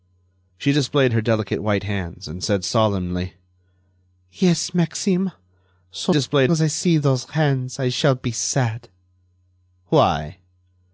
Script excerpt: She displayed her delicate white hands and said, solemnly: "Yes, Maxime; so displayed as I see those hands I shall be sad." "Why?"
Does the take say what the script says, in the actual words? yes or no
yes